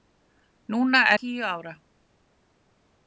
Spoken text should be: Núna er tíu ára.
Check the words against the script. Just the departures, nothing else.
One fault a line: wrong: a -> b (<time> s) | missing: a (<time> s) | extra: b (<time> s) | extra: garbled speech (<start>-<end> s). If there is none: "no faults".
no faults